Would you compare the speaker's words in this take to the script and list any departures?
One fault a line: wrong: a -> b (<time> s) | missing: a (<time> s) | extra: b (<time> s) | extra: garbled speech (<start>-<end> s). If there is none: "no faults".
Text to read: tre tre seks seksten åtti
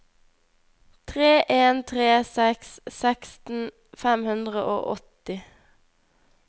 extra: en (1.6 s)
extra: fem hundre og (4.0 s)